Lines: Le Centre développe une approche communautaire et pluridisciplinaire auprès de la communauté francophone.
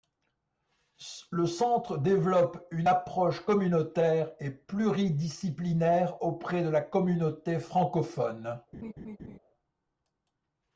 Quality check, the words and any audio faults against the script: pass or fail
fail